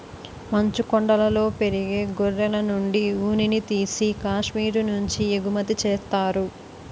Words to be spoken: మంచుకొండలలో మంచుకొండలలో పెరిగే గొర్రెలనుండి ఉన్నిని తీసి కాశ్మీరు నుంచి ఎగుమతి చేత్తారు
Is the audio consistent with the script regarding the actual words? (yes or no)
no